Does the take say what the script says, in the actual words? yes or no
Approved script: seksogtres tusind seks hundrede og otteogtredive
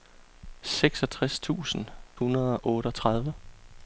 no